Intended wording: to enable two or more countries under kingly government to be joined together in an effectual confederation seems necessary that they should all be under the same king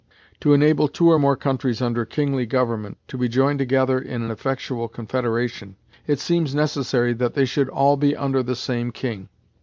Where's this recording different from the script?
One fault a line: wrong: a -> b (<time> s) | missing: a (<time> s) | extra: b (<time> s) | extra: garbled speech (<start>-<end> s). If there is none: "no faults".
extra: it (6.1 s)